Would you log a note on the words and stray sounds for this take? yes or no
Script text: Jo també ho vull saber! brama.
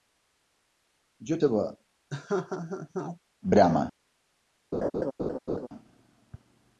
yes